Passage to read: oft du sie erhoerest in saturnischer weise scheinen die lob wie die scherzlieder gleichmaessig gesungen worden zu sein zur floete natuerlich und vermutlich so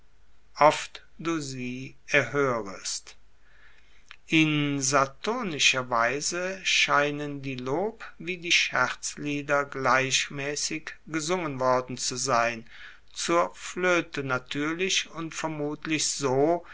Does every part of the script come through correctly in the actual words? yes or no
yes